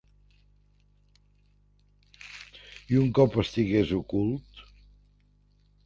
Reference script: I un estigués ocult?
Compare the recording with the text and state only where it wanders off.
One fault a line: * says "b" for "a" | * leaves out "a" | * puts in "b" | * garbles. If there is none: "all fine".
* puts in "cop"